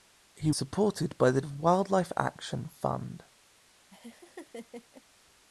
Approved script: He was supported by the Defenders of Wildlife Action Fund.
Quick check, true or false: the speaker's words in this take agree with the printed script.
false